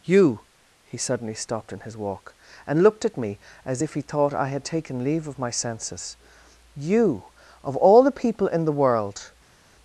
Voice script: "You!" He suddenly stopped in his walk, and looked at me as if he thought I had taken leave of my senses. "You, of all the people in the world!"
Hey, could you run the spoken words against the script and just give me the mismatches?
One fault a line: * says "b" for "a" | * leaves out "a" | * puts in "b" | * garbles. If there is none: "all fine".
all fine